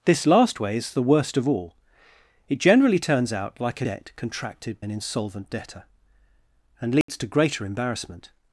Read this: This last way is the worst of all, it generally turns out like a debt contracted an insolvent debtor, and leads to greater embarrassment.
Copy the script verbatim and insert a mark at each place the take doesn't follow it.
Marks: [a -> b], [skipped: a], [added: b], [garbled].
This last way is the worst of all, it generally turns out like a debt contracted an insolvent debtor, and leads to greater embarrassment.